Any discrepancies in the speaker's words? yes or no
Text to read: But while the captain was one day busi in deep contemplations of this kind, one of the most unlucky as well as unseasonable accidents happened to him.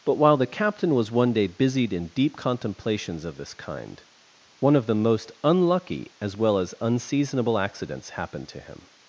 yes